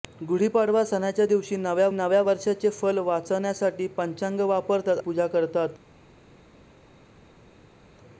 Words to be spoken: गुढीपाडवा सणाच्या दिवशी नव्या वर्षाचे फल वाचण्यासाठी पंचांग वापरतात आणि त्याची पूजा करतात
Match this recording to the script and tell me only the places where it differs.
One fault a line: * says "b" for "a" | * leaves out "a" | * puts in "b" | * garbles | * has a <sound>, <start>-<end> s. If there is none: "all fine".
* puts in "नव्या"
* leaves out "आणि त्याची"